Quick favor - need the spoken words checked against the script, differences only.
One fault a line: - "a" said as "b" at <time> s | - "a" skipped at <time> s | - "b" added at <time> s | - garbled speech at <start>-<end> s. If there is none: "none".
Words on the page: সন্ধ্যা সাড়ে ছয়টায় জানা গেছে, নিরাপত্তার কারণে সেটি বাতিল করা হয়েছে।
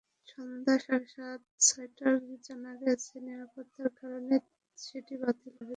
- "করা" skipped at 5.5 s